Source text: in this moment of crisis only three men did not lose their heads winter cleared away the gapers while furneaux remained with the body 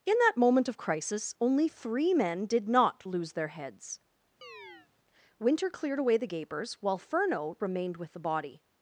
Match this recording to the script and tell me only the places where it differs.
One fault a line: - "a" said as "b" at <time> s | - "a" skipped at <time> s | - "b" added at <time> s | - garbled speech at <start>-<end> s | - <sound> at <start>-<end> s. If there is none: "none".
- "this" said as "that" at 0.2 s
- chirp at 4.4-4.9 s